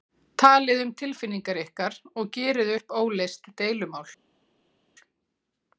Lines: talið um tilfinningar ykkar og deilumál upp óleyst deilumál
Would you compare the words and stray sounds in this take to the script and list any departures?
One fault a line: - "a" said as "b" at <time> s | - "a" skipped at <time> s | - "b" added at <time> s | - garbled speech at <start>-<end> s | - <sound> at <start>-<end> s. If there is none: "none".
- "deilumál" said as "gerið" at 2.4 s